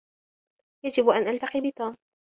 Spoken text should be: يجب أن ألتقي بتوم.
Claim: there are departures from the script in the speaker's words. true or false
false